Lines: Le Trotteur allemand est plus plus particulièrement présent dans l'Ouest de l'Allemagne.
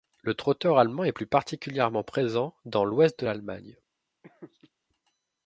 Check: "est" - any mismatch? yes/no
no